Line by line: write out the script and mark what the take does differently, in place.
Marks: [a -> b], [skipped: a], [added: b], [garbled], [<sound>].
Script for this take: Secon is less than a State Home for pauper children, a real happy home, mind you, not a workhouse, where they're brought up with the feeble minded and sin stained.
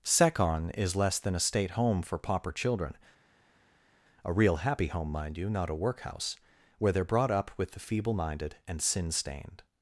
Secon is less than a State Home for pauper children, a real happy home, mind you, not a workhouse, where they're brought up with the feeble minded and sin stained.